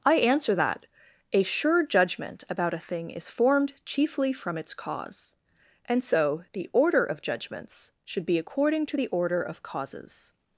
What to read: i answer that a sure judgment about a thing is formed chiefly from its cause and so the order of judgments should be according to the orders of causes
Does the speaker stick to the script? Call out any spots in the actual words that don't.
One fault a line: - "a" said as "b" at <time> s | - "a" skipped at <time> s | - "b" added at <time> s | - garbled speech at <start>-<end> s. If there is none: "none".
- "orders" said as "order" at 9.1 s